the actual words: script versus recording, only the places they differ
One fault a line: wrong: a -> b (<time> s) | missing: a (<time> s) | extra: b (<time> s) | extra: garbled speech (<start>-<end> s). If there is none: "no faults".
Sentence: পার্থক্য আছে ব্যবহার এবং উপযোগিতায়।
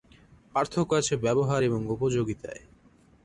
no faults